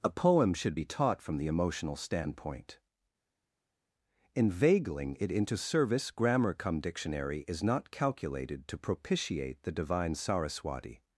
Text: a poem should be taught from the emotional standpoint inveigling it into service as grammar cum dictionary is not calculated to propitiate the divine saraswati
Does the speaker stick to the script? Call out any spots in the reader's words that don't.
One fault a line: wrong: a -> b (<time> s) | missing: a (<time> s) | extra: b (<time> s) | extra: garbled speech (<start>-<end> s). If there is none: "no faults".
missing: as (6.1 s)